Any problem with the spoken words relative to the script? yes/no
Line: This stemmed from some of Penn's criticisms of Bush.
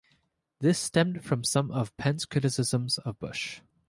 no